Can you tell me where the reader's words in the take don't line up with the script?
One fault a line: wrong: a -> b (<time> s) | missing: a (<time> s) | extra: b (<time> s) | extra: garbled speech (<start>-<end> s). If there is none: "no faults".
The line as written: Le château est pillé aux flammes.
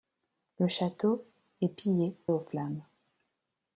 no faults